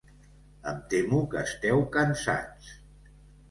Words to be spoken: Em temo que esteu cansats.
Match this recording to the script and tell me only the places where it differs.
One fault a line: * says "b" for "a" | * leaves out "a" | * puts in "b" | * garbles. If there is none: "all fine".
all fine